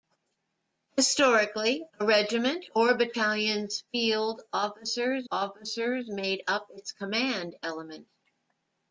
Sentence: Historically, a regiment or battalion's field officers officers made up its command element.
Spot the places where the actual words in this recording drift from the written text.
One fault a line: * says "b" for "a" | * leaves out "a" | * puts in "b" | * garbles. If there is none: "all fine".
all fine